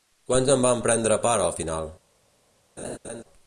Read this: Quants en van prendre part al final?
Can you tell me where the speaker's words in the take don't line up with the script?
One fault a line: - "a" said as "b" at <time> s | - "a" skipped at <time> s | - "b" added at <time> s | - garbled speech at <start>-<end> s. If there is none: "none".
none